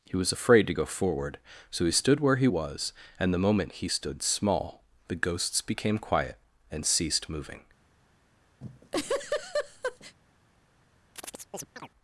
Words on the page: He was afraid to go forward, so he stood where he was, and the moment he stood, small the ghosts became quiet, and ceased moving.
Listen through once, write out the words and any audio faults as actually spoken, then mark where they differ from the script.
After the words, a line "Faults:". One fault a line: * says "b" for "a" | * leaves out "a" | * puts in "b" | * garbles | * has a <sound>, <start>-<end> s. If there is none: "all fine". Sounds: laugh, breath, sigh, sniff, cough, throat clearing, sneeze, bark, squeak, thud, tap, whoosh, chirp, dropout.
He was afraid to go forward, so he stood where he was, and the moment he stood, small the ghosts became quiet, and ceased moving.
Faults:
* has a laugh, 8.6-10.1 s
* has a chirp, 11.2-11.9 s